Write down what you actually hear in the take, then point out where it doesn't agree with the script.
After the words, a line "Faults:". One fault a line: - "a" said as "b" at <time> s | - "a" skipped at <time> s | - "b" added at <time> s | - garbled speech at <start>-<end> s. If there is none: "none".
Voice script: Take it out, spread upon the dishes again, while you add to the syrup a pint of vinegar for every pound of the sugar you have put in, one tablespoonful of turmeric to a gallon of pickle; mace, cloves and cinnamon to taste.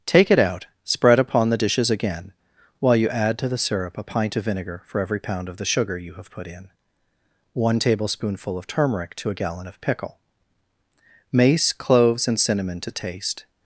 Take it out, spread upon the dishes again, while you add to the syrup a pint of vinegar for every pound of the sugar you have put in, one tablespoonful of turmeric to a gallon of pickle; mace, cloves and cinnamon to taste.
Faults:
none